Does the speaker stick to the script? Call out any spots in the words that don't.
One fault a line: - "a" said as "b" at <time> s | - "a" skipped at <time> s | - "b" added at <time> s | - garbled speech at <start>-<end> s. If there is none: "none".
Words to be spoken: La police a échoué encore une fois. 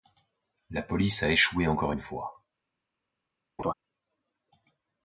none